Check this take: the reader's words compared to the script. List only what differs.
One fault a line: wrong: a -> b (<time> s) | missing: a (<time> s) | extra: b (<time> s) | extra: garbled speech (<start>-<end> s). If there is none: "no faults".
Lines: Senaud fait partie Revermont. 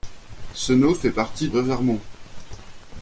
no faults